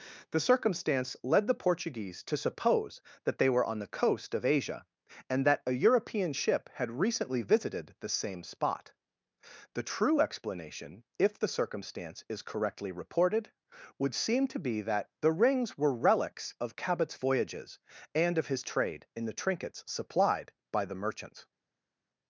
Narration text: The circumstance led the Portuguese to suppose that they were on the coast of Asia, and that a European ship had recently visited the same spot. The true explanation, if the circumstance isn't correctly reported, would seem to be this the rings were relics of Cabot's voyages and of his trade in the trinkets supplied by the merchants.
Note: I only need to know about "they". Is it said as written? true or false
true